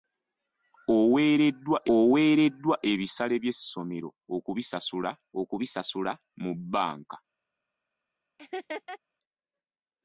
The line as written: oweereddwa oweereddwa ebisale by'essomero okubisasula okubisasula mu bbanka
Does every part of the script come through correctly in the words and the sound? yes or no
no